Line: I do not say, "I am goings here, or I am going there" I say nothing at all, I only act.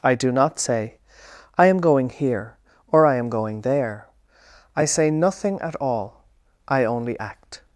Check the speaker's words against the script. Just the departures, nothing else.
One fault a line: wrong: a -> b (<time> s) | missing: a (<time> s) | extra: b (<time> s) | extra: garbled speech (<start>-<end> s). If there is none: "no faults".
wrong: goings -> going (1.8 s)